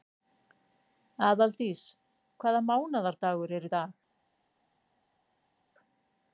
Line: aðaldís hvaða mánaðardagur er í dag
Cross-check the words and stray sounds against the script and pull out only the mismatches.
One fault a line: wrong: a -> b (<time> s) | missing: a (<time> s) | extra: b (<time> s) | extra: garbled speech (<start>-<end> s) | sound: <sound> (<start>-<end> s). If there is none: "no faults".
no faults